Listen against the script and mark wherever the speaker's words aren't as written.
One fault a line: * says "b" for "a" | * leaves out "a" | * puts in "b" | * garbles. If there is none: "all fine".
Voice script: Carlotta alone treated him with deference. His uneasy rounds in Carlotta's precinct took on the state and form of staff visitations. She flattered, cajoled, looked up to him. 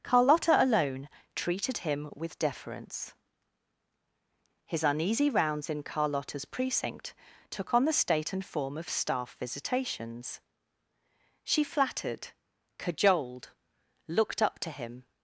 all fine